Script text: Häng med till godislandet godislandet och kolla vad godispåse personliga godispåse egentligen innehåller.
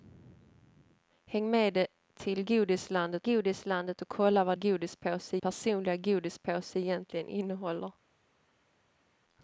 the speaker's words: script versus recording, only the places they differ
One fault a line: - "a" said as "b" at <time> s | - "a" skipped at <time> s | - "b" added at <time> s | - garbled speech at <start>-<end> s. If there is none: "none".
none